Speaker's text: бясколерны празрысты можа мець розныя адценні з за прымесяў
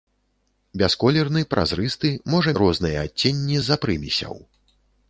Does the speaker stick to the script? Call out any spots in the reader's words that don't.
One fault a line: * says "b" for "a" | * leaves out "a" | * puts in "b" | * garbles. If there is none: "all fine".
* leaves out "мець"